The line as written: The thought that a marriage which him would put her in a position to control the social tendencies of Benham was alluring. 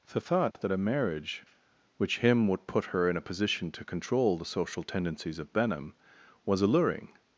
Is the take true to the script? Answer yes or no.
yes